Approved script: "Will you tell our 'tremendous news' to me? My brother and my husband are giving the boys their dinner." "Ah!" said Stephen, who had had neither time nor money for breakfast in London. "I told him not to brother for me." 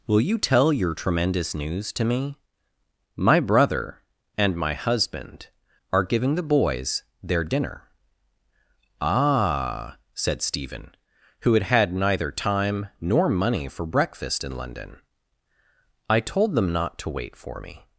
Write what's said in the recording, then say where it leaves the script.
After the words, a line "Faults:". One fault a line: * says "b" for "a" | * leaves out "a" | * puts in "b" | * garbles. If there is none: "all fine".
"Will you tell your 'tremendous news' to me? My brother and my husband are giving the boys their dinner." "Ah!" said Stephen, who had had neither time nor money for breakfast in London. "I told them not to wait for me."
Faults:
* says "your" for "our"
* says "them" for "him"
* says "wait" for "brother"